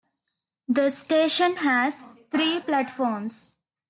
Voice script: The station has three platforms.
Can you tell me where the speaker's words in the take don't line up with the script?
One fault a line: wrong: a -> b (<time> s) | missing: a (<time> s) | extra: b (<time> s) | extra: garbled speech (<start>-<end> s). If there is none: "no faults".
no faults